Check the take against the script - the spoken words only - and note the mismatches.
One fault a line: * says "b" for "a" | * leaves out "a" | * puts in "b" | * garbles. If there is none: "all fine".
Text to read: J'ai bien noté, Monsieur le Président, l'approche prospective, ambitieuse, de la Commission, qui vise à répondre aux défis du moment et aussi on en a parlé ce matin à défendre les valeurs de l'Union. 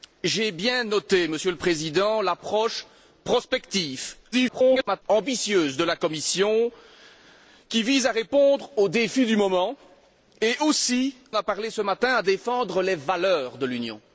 * garbles
* leaves out "on en"